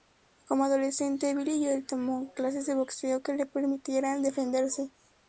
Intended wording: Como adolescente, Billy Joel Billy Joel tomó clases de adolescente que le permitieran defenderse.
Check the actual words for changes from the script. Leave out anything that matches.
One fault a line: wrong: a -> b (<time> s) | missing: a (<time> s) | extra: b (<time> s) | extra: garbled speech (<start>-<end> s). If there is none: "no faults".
missing: Billy Joel (1.9 s)
wrong: adolescente -> boxeo (2.7 s)